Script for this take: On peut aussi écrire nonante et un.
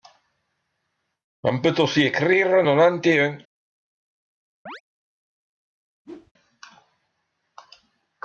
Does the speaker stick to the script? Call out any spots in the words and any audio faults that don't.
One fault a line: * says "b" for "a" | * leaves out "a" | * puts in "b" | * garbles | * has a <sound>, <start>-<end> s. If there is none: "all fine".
* has a chirp, 4.7-4.8 s
* has a whoosh, 6.0-6.3 s